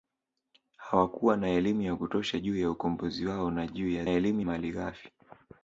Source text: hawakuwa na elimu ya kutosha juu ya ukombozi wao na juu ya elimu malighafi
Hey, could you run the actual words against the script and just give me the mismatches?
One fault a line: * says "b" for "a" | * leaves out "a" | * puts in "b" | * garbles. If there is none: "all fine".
all fine